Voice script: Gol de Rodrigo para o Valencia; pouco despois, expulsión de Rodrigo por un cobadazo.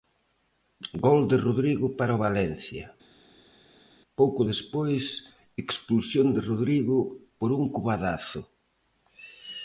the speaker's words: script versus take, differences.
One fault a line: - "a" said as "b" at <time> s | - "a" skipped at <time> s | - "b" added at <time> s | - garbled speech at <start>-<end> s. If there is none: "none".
none